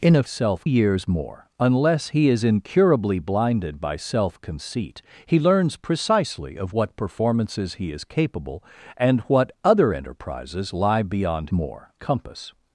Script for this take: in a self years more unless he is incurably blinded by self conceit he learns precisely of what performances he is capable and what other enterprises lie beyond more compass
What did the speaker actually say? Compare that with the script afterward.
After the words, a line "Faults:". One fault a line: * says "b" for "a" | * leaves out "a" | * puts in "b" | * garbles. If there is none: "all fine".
in a self years more unless he is incurably blinded by self conceit he learns precisely of what performances he is capable and what other enterprises lie beyond more compass
Faults:
all fine